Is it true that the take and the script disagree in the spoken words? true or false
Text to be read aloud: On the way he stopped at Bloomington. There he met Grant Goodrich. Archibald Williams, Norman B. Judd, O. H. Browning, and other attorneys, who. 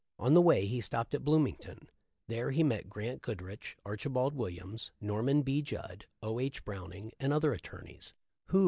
false